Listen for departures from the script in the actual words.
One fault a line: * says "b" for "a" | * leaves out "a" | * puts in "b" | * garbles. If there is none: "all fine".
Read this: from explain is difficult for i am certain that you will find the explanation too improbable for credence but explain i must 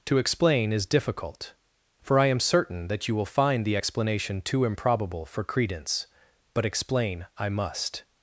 * says "to" for "from"